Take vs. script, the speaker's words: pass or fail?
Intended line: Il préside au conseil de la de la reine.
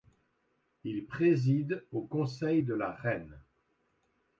fail